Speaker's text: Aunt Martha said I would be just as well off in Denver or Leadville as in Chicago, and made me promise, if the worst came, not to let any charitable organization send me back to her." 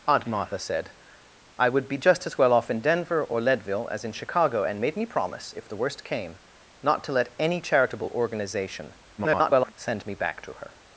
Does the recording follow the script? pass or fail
fail